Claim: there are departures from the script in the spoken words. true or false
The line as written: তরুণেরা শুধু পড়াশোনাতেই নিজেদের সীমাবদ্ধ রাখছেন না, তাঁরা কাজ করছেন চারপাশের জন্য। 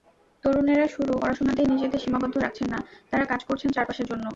true